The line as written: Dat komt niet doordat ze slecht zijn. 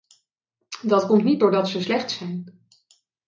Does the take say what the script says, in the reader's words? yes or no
yes